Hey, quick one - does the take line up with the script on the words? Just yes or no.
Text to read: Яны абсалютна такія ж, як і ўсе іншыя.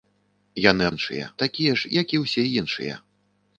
no